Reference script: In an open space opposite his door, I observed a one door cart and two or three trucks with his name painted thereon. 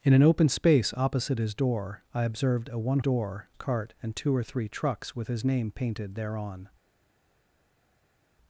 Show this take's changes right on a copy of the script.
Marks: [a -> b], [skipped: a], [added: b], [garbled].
In an open space opposite his door, I observed a one door cart and two or three trucks with his name painted thereon.